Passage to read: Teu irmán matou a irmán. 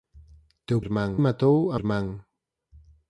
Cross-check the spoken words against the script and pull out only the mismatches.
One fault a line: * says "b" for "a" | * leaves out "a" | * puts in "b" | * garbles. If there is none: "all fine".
all fine